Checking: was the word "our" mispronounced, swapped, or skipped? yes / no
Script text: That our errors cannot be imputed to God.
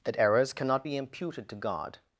yes